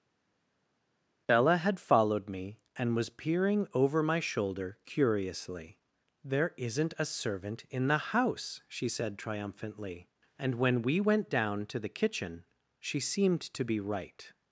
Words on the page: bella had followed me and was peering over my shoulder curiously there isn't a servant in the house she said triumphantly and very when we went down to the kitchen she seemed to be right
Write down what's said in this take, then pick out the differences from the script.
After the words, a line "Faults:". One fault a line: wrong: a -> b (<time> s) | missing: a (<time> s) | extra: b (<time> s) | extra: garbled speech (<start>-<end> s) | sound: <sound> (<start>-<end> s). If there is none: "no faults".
bella had followed me and was peering over my shoulder curiously there isn't a servant in the house she said triumphantly and when we went down to the kitchen she seemed to be right
Faults:
missing: very (10.6 s)